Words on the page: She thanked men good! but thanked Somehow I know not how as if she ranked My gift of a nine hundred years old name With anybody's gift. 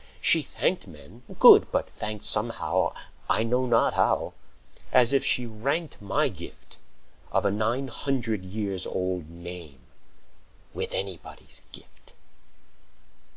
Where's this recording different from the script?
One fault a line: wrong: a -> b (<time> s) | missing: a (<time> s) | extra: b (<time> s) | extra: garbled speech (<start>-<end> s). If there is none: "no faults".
no faults